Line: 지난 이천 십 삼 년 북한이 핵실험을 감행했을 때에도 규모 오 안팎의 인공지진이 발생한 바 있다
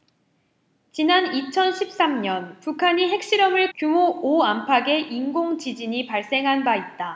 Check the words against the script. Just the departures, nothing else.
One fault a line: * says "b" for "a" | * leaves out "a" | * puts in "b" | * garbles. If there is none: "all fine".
* leaves out "감행했을 때에도"